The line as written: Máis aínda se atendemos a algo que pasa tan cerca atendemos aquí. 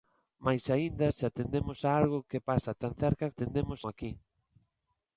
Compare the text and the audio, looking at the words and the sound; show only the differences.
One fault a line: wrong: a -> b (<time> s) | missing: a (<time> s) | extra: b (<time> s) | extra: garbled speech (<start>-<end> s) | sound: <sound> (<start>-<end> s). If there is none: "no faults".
no faults